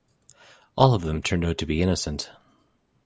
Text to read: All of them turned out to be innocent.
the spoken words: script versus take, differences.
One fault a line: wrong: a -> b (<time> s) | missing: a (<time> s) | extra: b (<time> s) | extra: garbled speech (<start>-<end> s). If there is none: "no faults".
no faults